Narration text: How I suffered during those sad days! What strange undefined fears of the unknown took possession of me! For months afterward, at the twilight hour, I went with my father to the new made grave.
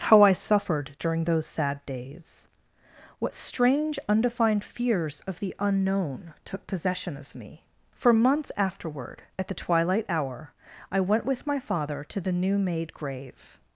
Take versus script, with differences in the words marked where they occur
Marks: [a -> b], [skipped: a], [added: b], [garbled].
How I suffered during those sad days! What strange undefined fears of the unknown took possession of me! For months afterward, at the twilight hour, I went with my father to the new made grave.